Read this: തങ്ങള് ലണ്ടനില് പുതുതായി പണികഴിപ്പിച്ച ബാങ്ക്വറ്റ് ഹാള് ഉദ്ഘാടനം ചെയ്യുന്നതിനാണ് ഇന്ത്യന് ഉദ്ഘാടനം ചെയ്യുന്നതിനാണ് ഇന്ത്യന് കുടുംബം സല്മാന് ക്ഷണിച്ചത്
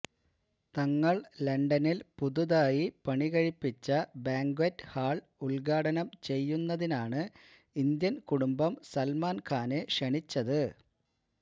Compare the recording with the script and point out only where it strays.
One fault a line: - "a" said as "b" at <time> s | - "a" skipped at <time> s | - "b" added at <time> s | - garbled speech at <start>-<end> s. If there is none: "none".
- "ഉദ്ഘാടനം ചെയ്യുന്നതിനാണ് ഇന്ത്യന്" skipped at 8.2 s
- "ഖാനെ" added at 9.5 s